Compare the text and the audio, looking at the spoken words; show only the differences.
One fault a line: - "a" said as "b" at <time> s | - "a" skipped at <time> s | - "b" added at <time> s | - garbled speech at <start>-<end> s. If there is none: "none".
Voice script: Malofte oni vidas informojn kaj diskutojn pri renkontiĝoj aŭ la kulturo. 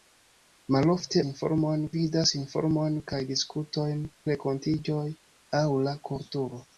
- "oni" said as "informojn" at 1.3 s
- "pri" skipped at 4.0 s